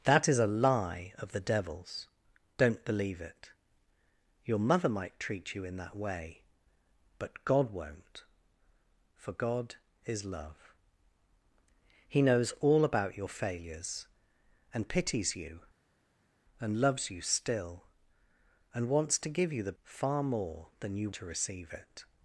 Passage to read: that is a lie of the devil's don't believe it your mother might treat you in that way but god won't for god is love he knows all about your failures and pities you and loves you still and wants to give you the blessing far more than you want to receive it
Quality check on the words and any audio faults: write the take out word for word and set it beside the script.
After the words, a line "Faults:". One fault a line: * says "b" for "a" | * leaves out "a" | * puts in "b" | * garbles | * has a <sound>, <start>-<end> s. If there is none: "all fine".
that is a lie of the devil's don't believe it your mother might treat you in that way but god won't for god is love he knows all about your failures and pities you and loves you still and wants to give you the far more than you to receive it
Faults:
* leaves out "blessing"
* leaves out "want"